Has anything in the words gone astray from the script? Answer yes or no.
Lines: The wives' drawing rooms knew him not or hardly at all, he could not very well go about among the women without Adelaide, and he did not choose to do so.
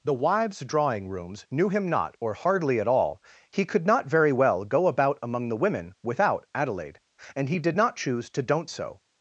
yes